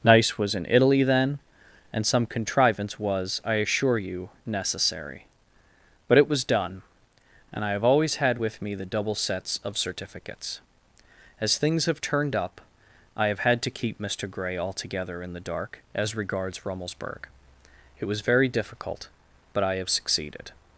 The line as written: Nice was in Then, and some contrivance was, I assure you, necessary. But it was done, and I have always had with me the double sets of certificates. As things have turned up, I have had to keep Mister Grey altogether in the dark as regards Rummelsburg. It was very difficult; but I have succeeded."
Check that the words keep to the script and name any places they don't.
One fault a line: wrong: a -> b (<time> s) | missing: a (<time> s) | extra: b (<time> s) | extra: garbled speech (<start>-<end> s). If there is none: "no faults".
extra: Italy (0.7 s)